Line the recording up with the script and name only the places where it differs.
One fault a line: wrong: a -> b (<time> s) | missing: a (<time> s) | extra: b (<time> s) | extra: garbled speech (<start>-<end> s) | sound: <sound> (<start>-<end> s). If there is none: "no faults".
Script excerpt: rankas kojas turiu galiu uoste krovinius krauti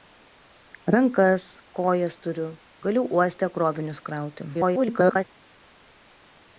extra: garbled speech (4.5-5.2 s)